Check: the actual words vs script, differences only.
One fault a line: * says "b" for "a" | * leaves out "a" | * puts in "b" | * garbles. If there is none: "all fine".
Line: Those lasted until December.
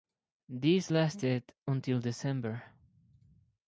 * says "These" for "Those"